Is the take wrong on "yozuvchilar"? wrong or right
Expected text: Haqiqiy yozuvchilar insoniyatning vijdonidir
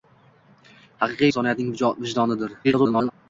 wrong